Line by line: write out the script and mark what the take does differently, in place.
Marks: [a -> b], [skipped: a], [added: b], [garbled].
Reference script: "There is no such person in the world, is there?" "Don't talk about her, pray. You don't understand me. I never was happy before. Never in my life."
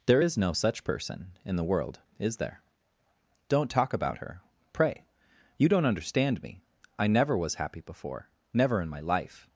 "There is no such person in the world, is there?" "Don't talk about her, pray. You don't understand me. I never was happy before. Never in my life."